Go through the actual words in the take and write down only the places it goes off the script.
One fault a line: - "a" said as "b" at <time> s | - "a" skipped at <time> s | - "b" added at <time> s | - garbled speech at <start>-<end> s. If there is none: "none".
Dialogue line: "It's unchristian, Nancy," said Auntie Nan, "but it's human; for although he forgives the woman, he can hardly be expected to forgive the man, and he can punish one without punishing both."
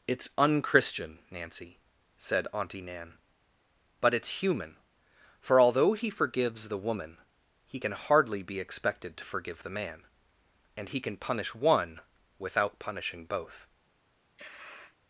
none